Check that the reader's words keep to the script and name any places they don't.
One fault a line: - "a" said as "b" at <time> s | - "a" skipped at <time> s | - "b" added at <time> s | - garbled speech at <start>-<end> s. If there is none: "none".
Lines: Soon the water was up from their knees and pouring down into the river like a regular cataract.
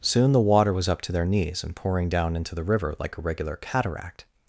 - "from" said as "to" at 1.0 s